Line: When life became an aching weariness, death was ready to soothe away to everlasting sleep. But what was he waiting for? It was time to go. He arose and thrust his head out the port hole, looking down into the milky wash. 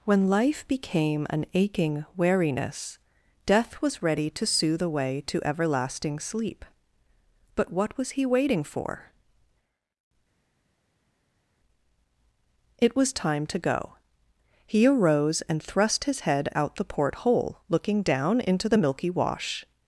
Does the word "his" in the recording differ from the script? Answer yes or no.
no